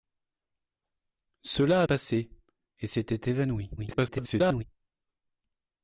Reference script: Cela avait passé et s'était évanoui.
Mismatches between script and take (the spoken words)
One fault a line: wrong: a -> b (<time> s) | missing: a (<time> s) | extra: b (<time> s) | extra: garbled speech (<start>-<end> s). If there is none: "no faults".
missing: avait (1.8 s)
extra: garbled speech (3.8-4.6 s)